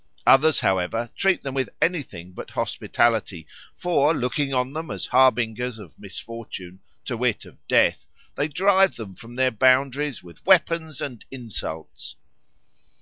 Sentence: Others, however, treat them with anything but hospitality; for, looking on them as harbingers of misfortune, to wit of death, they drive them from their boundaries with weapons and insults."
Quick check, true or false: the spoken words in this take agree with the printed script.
true